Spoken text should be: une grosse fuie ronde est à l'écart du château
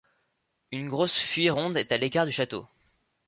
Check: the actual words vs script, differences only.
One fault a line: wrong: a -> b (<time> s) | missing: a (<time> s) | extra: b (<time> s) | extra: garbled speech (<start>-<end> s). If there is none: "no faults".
no faults